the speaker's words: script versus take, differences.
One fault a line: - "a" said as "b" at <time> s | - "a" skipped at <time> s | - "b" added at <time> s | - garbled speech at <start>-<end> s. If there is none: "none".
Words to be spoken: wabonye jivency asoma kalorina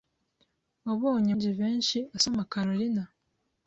none